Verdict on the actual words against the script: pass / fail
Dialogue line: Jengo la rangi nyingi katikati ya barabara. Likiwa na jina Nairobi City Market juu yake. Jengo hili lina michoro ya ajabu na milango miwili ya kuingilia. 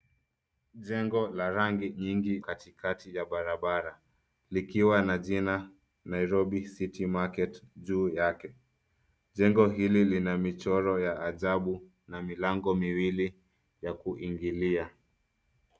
pass